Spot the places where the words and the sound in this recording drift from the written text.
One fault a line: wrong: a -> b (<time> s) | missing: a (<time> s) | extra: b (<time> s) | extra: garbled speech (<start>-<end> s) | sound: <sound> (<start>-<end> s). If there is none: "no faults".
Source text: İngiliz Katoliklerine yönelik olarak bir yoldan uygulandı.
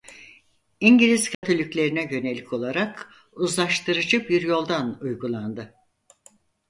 sound: dropout (1.3-1.4 s)
extra: uzlaştırıcı (3.3 s)